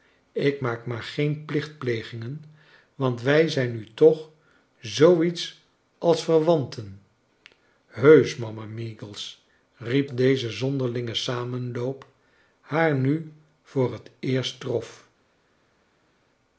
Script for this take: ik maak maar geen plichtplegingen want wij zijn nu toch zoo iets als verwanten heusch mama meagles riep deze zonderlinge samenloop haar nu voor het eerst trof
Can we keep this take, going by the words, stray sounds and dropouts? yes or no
yes